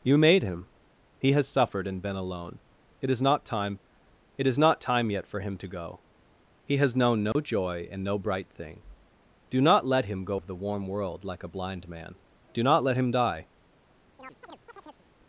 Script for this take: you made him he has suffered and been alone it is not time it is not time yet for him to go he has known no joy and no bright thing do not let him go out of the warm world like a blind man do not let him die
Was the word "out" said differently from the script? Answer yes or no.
yes